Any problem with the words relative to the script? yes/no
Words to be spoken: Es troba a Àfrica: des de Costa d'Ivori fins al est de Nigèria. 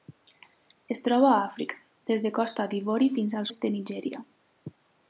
no